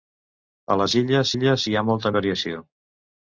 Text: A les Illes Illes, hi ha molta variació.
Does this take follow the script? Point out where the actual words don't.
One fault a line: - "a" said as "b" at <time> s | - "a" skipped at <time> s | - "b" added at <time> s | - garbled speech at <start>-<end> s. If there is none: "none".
none